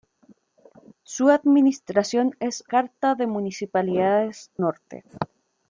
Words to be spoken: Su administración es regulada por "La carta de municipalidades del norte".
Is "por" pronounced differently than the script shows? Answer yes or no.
yes